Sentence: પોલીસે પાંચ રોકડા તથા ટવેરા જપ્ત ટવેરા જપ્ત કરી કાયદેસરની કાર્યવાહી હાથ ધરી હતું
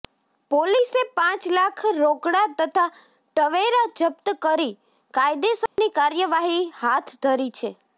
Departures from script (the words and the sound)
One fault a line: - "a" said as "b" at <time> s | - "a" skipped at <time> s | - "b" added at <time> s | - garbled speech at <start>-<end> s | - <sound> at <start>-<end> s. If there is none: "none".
- "લાખ" added at 1.5 s
- "ટવેરા જપ્ત" skipped at 4.3 s
- dropout at 5.7-5.8 s
- "હતું" said as "છે" at 7.6 s